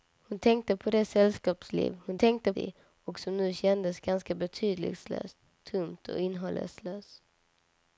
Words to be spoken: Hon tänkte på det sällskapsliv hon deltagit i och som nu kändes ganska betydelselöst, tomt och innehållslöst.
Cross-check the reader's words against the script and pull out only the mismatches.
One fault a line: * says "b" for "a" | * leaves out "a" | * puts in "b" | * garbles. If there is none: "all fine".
* says "tänkte" for "deltagit"